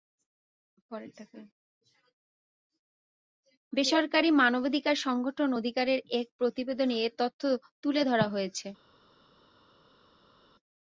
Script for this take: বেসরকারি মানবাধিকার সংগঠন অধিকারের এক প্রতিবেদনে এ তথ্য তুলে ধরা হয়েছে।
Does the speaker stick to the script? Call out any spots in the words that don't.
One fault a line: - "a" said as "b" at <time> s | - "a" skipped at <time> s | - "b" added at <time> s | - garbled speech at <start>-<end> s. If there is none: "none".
none